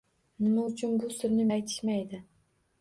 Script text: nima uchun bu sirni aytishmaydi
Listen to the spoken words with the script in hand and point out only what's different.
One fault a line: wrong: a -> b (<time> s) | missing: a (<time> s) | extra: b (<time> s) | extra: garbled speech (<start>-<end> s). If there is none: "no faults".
no faults